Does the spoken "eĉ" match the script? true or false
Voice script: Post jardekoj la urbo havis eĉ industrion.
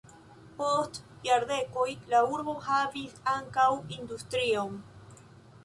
false